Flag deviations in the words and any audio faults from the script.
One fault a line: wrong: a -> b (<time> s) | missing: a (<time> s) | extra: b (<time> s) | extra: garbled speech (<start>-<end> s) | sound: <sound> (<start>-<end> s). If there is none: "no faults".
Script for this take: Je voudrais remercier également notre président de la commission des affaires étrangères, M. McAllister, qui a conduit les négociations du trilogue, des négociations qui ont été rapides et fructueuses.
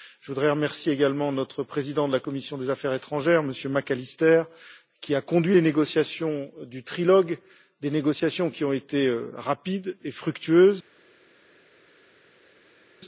no faults